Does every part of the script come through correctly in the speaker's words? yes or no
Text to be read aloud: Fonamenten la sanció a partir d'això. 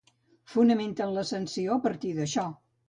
yes